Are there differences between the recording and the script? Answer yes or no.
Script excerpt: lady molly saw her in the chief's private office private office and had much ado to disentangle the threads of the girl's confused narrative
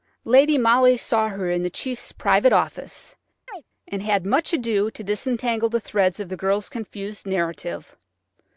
yes